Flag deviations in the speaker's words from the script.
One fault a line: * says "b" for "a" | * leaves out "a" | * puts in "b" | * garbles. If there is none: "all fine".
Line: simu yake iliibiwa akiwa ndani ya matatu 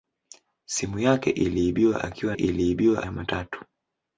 * says "iliibiwa" for "ndani"